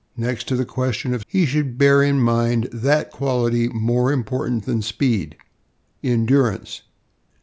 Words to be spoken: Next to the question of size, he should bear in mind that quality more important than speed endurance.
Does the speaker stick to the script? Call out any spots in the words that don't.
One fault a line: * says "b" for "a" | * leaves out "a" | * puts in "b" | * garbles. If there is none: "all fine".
* leaves out "size"